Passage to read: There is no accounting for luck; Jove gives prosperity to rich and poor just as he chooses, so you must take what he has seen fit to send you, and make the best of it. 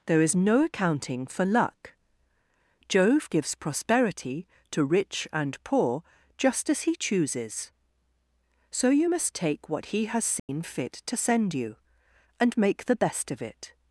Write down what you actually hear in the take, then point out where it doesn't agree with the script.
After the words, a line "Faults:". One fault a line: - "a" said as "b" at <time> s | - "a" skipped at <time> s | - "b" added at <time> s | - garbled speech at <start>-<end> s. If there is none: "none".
There is no accounting for luck; Jove gives prosperity to rich and poor just as he chooses, so you must take what he has seen fit to send you, and make the best of it.
Faults:
none